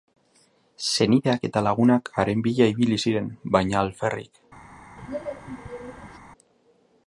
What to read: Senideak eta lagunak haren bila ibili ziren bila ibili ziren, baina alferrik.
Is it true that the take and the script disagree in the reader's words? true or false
true